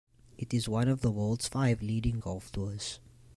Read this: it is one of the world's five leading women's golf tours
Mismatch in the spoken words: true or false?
true